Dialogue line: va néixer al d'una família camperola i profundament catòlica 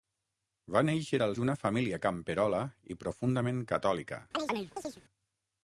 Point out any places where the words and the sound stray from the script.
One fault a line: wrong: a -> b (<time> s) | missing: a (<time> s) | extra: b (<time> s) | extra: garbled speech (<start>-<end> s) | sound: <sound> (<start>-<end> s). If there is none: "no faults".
sound: chirp (4.3-5.0 s)